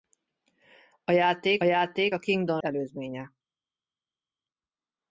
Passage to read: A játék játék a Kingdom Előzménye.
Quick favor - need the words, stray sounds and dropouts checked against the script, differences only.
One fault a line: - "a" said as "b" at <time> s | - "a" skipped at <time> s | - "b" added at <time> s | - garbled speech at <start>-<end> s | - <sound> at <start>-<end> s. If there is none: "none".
none